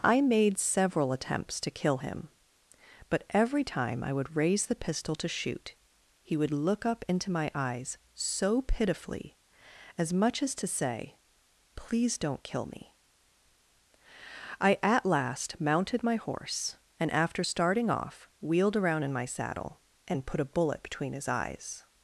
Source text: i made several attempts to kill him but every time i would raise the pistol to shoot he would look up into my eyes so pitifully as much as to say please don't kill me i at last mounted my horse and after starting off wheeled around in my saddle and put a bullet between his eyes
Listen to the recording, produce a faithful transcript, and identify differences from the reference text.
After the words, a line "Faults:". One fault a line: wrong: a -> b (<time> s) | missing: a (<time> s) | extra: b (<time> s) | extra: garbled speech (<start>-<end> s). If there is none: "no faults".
i made several attempts to kill him but every time i would raise the pistol to shoot he would look up into my eyes so pitifully as much as to say please don't kill me i at last mounted my horse and after starting off wheeled around in my saddle and put a bullet between his eyes
Faults:
no faults